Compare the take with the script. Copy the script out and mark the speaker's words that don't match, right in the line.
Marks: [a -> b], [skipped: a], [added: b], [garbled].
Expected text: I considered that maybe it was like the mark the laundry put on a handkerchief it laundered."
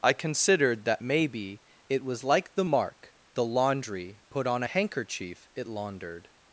I considered that maybe it was like the mark the laundry put on a handkerchief it laundered."